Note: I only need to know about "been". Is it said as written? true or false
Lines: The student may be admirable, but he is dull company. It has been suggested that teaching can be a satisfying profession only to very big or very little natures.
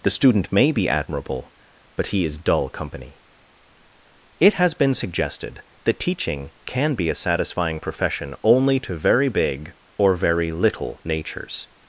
true